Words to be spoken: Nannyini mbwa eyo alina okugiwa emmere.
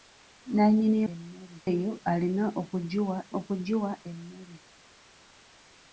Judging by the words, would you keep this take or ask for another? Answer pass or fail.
fail